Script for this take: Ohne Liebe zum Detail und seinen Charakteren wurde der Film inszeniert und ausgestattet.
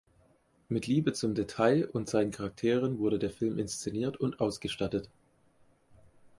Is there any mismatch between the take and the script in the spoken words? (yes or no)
yes